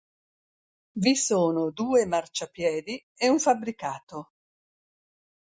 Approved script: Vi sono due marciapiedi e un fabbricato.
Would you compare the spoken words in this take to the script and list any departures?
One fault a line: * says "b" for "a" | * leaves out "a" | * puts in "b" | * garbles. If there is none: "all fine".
all fine